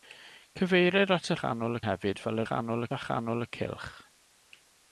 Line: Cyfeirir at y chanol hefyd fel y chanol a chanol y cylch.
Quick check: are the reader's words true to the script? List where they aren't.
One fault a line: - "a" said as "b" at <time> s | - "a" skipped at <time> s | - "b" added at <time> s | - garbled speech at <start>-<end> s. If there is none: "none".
none